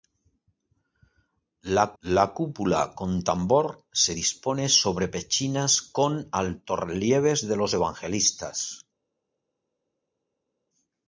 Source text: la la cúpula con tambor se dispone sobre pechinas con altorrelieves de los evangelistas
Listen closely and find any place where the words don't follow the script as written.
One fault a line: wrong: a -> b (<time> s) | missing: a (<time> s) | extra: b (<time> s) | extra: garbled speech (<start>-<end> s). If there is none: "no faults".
no faults